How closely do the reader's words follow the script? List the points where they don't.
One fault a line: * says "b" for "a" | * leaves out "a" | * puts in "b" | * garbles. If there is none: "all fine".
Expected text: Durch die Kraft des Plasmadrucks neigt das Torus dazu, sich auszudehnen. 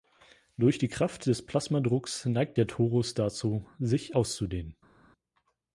* says "der" for "das"